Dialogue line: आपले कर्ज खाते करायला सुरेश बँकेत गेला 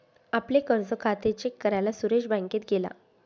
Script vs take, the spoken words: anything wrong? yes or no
yes